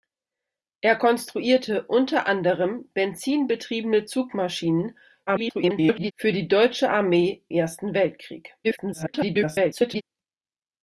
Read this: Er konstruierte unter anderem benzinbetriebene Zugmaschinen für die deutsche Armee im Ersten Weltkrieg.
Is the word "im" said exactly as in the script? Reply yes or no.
no